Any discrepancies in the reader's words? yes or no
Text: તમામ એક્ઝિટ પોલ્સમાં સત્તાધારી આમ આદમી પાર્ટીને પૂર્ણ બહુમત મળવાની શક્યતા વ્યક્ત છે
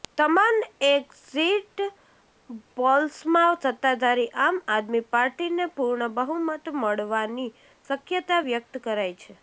yes